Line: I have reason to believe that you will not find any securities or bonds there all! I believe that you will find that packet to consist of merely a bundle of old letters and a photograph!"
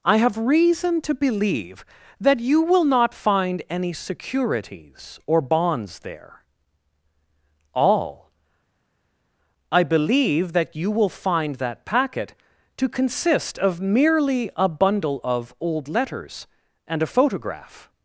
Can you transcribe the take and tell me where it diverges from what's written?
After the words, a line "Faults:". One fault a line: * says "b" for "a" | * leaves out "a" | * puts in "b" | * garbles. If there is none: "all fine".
I have reason to believe that you will not find any securities or bonds there all! I believe that you will find that packet to consist of merely a bundle of old letters and a photograph!"
Faults:
all fine